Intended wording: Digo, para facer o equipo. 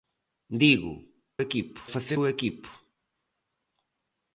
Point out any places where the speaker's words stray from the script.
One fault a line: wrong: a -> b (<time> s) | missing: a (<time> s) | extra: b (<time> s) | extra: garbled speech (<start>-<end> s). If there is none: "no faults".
wrong: para -> equipo (1.4 s)